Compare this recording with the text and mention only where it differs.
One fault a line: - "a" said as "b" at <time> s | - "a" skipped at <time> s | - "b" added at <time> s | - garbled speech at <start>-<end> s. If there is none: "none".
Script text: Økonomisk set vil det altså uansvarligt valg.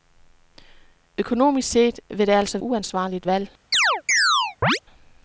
none